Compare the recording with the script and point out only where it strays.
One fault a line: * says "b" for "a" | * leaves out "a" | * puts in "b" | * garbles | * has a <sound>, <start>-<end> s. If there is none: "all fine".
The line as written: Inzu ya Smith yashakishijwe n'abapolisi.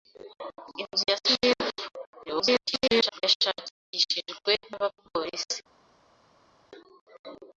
* garbles